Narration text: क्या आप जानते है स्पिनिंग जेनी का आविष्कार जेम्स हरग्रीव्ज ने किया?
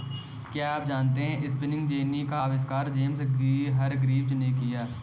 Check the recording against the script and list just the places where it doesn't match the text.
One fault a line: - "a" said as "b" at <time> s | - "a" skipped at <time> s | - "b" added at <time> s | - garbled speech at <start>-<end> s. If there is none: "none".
none